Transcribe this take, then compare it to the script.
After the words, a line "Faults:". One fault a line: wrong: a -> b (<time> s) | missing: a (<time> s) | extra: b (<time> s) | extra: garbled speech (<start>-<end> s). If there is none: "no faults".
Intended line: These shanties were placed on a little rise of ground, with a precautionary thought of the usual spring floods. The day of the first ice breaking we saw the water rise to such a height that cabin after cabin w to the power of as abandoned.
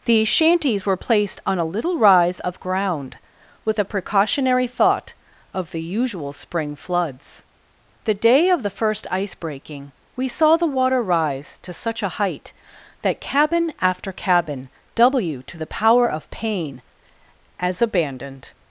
These shanties were placed on a little rise of ground, with a precautionary thought of the usual spring floods. The day of the first ice breaking we saw the water rise to such a height that cabin after cabin w to the power of pain as abandoned.
Faults:
extra: pain (16.3 s)